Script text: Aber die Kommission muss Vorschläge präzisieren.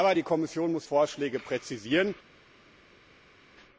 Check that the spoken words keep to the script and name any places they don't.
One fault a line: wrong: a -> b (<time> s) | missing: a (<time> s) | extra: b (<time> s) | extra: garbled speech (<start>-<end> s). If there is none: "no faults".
no faults